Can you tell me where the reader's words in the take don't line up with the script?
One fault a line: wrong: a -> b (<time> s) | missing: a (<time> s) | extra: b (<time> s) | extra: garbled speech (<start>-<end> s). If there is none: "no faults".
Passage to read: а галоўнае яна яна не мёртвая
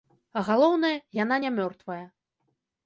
missing: яна (1.4 s)